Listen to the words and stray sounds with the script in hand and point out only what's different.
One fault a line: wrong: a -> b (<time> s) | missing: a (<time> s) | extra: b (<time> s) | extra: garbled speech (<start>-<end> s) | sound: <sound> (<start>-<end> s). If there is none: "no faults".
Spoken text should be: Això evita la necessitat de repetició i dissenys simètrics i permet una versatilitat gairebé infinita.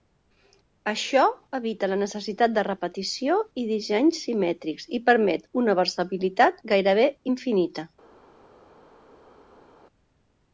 no faults